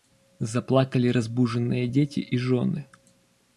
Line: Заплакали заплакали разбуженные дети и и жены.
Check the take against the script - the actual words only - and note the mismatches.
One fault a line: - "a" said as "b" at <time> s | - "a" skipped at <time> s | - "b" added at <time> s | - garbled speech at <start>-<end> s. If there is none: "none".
- "заплакали" skipped at 1.1 s
- "и" skipped at 2.4 s